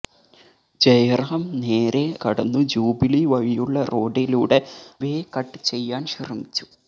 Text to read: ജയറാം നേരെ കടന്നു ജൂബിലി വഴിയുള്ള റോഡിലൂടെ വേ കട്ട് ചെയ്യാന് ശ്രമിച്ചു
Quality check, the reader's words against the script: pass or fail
pass